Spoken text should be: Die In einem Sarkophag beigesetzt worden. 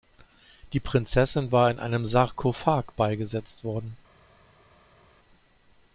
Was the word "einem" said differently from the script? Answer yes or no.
no